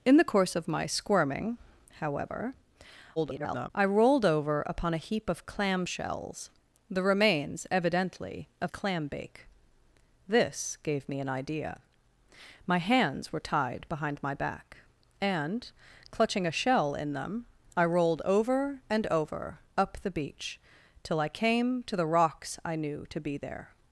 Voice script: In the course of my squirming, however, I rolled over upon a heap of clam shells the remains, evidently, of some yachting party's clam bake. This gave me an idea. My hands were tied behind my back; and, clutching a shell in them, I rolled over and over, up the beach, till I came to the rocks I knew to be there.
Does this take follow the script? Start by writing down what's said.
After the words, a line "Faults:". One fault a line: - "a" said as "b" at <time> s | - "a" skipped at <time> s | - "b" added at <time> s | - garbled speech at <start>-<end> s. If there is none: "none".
In the course of my squirming, however, [garbled] I rolled over upon a heap of clam shells the remains, evidently, of clam bake. This gave me an idea. My hands were tied behind my back; and, clutching a shell in them, I rolled over and over, up the beach, till I came to the rocks I knew to be there.
Faults:
- garbled speech at 3.2-3.7 s
- "some yachting party's" skipped at 8.7 s